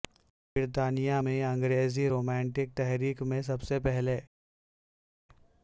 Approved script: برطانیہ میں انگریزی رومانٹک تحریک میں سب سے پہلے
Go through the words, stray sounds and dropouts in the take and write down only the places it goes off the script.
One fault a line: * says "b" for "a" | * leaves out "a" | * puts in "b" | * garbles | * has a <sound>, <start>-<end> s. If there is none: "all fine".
all fine